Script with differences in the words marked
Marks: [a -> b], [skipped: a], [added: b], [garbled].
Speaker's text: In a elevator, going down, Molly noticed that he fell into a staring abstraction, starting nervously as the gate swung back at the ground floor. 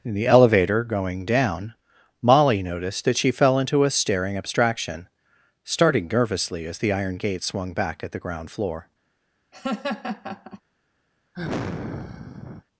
In [a -> the] elevator, going down, Molly noticed that [he -> she] fell into a staring abstraction, starting nervously as the [added: iron] gate swung back at the ground floor.